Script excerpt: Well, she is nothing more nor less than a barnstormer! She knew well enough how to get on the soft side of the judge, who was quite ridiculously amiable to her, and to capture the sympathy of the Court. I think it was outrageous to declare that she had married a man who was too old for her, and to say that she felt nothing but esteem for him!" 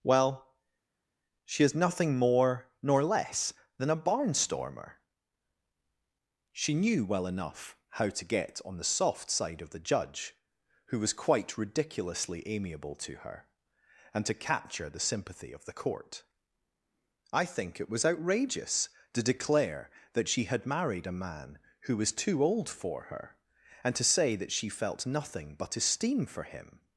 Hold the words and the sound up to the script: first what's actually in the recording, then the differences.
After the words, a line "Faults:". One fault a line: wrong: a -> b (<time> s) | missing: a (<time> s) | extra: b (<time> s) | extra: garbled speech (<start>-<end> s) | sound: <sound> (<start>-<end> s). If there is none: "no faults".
Well, she is nothing more nor less than a barnstormer! She knew well enough how to get on the soft side of the judge, who was quite ridiculously amiable to her, and to capture the sympathy of the Court. I think it was outrageous to declare that she had married a man who was too old for her, and to say that she felt nothing but esteem for him!"
Faults:
no faults